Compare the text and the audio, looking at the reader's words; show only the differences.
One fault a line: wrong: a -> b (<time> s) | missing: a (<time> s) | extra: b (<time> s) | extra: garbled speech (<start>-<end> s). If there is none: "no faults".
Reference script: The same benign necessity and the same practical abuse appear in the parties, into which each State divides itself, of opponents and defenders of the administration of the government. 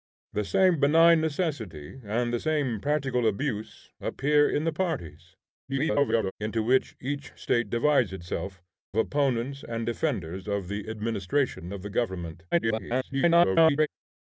extra: garbled speech (5.7-6.3 s)
missing: of (8.6 s)
extra: garbled speech (12.5-13.9 s)